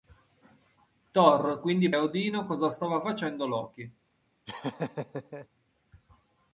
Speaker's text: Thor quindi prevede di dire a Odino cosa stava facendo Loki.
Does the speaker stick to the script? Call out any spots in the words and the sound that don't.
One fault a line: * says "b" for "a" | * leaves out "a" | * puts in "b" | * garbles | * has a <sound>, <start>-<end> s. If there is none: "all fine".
* leaves out "prevede di dire"
* has a laugh, 4.5-5.5 s